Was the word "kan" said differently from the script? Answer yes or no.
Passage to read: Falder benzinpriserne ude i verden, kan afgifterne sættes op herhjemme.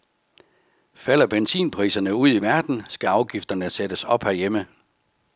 yes